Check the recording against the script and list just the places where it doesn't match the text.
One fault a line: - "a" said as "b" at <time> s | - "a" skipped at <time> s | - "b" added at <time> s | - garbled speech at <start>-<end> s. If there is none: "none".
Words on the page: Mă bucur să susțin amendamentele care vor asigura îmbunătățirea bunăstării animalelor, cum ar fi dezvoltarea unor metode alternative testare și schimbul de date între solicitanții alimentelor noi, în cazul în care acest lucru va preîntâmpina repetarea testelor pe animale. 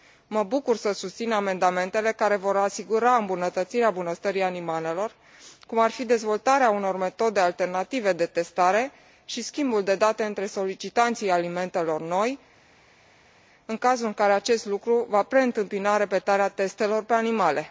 - "de" added at 8.1 s